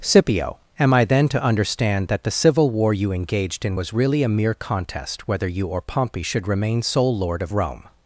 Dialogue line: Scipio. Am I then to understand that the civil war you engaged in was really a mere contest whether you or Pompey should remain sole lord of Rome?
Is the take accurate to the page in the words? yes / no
yes